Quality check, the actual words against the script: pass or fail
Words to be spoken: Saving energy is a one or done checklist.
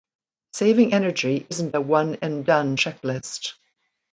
fail